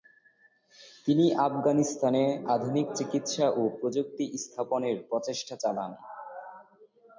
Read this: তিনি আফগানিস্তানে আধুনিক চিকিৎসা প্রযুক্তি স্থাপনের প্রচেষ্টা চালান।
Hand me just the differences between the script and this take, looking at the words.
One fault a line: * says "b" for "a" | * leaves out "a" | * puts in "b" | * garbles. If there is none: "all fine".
* puts in "ও"